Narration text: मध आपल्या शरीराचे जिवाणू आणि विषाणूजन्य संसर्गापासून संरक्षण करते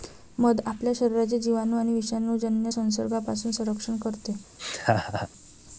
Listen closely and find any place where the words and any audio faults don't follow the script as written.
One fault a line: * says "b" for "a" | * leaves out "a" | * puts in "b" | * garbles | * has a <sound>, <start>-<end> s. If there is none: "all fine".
* has a laugh, 4.6-5.3 s